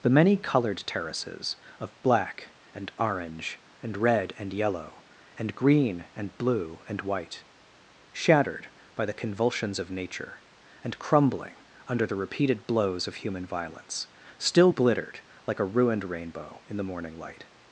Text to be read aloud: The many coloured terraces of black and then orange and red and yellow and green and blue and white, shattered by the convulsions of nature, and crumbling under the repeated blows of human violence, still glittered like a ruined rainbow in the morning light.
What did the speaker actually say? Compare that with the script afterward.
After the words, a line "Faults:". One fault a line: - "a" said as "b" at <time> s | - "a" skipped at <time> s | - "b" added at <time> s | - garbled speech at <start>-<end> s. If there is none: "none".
The many coloured terraces of black and orange and red and yellow and green and blue and white, shattered by the convulsions of nature, and crumbling under the repeated blows of human violence, still glittered like a ruined rainbow in the morning light.
Faults:
- "then" skipped at 2.9 s